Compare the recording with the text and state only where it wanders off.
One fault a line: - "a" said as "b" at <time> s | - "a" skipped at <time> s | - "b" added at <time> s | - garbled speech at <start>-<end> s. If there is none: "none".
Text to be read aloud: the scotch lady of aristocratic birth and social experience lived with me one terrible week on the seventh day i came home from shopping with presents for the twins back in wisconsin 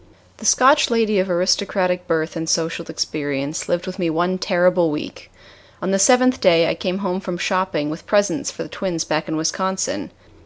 none